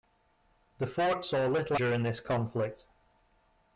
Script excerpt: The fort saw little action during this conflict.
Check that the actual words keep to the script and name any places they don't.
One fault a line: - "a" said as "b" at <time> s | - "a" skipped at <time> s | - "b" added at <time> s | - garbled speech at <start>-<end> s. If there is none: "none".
- "action" skipped at 1.8 s